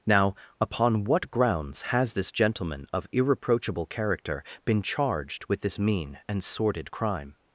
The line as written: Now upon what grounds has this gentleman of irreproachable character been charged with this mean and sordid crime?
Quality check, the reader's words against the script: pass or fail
pass